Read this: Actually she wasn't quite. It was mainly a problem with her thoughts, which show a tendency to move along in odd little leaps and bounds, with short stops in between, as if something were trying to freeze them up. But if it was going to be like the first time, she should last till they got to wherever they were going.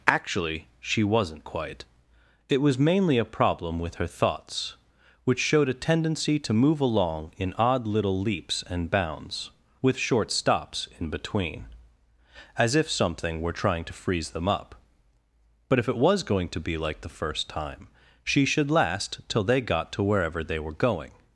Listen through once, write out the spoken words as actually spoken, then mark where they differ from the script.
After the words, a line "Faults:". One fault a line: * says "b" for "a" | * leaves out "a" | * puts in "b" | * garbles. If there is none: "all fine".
Actually she wasn't quite. It was mainly a problem with her thoughts, which showed a tendency to move along in odd little leaps and bounds, with short stops in between, as if something were trying to freeze them up. But if it was going to be like the first time, she should last till they got to wherever they were going.
Faults:
* says "showed" for "show"